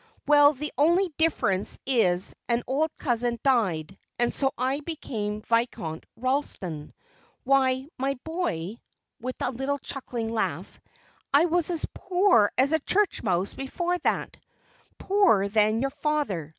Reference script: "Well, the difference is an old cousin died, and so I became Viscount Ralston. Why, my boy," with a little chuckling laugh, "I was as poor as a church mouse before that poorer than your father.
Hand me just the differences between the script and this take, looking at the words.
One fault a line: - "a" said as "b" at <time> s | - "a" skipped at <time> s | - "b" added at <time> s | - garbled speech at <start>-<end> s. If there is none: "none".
- "only" added at 0.8 s